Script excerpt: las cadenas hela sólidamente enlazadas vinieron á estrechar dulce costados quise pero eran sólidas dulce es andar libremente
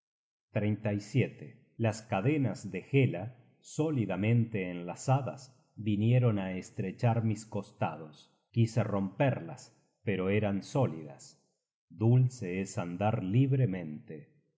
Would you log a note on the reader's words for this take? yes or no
yes